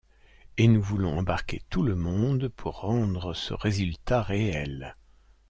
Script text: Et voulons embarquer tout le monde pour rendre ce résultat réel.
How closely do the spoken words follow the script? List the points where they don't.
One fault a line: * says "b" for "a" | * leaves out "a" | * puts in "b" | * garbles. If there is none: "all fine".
* puts in "nous"